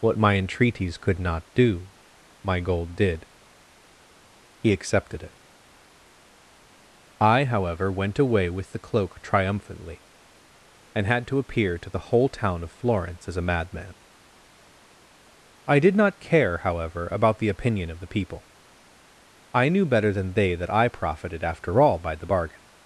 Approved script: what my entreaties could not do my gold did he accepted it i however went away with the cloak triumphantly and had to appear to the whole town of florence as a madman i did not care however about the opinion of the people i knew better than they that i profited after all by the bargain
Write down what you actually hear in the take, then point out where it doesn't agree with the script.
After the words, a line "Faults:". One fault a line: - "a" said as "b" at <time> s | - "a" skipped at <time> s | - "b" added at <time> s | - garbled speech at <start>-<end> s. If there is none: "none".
what my entreaties could not do my gold did he accepted it i however went away with the cloak triumphantly and had to appear to the whole town of florence as a madman i did not care however about the opinion of the people i knew better than they that i profited after all by the bargain
Faults:
none